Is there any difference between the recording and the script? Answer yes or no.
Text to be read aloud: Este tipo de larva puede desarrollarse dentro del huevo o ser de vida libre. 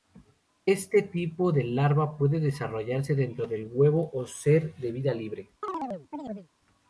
no